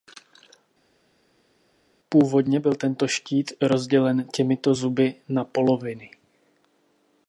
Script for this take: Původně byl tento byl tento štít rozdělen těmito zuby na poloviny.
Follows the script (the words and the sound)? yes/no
no